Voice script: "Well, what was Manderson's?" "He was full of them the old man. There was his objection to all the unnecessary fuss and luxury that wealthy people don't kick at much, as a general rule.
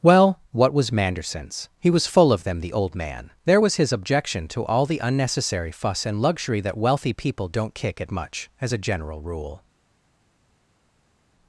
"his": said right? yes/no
yes